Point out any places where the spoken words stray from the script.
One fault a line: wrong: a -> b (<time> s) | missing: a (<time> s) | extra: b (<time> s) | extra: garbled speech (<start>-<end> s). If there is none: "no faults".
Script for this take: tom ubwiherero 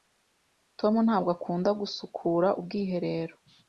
extra: ntabwo akunda gusukura (1.1 s)